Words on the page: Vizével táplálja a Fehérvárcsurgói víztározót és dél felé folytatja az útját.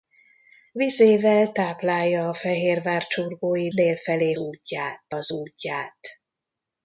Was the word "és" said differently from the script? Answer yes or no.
yes